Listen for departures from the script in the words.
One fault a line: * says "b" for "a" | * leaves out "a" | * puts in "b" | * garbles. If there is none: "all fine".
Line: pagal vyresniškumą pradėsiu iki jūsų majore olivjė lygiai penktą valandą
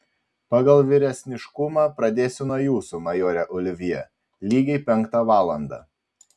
* says "nuo" for "iki"